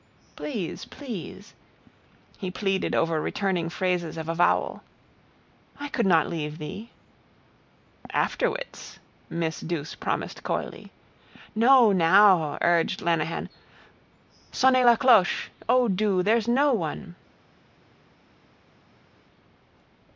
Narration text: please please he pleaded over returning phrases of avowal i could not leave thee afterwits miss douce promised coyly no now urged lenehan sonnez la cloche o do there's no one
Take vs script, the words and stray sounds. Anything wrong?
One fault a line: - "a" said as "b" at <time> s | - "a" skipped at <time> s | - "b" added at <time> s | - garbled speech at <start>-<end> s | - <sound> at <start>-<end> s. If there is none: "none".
none